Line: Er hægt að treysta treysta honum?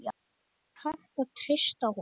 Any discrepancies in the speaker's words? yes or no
yes